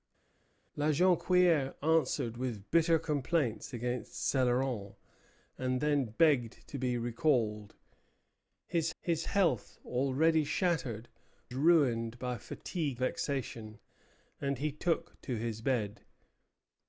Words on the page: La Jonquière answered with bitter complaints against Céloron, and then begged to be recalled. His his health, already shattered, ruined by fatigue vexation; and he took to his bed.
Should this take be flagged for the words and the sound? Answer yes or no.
no